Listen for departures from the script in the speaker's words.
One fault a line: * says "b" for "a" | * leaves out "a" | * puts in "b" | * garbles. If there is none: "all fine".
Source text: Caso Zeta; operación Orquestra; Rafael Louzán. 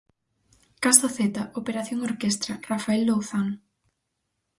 all fine